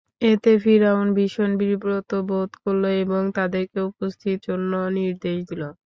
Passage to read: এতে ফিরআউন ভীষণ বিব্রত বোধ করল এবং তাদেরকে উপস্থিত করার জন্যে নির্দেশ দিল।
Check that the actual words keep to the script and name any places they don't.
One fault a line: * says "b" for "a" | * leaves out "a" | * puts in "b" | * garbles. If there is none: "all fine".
* leaves out "করার"